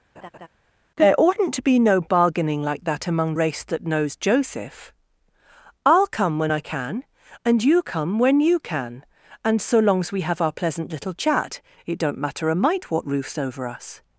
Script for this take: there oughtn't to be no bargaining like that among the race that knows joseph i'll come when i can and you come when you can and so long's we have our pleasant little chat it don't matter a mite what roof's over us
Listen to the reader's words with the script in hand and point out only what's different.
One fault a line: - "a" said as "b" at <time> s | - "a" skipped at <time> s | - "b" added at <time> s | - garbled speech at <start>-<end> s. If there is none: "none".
- "the" skipped at 3.3 s